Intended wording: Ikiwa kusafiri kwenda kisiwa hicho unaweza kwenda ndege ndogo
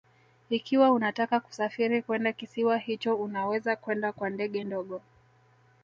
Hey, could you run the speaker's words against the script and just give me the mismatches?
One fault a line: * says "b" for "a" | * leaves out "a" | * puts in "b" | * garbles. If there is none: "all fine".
* puts in "unataka"
* puts in "kwa"